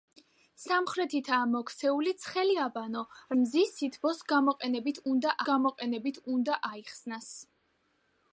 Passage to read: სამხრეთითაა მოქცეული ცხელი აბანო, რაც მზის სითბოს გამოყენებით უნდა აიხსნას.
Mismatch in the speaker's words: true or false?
true